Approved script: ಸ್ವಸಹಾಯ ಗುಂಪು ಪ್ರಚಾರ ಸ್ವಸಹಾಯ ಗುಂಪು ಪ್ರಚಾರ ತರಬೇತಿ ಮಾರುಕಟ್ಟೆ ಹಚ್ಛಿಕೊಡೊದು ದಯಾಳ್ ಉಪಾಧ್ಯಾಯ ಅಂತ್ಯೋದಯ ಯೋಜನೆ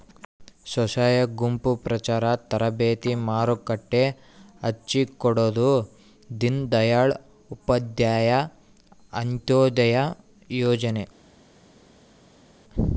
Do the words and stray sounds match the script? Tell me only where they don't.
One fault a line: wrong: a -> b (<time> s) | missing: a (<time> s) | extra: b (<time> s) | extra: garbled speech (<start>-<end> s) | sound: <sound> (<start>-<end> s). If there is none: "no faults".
missing: ಸ್ವಸಹಾಯ ಗುಂಪು ಪ್ರಚಾರ (2.2 s)
extra: ದೀನ್ (6.4 s)